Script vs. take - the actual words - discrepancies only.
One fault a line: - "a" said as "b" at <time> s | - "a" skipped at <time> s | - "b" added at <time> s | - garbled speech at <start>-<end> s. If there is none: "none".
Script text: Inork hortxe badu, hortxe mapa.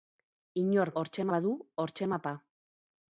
none